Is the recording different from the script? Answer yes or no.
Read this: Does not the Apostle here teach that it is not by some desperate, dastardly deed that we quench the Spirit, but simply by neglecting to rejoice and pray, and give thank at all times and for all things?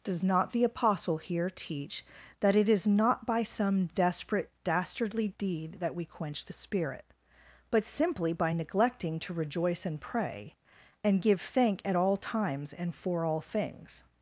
no